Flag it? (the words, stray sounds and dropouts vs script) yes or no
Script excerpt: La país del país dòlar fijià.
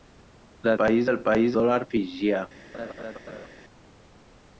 yes